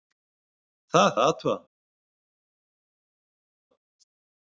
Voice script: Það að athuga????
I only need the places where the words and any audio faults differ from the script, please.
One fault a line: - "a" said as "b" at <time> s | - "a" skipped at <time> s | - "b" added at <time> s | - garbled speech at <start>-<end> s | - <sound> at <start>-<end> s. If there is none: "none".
none